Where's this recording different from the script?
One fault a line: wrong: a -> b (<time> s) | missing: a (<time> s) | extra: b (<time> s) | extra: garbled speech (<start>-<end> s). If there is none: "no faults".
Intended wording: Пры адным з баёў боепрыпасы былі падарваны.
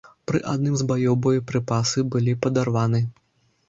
no faults